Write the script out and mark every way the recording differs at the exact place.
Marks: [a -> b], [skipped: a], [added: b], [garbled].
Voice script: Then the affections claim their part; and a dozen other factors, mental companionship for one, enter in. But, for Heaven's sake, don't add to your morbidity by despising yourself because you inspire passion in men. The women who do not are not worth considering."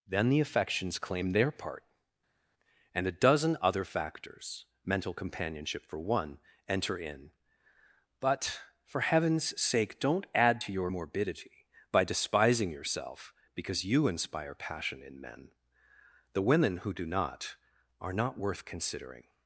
Then the affections claim their part; and a dozen other factors, mental companionship for one, enter in. But, for Heaven's sake, don't add to your morbidity by despising yourself because you inspire passion in men. The women who do not are not worth considering."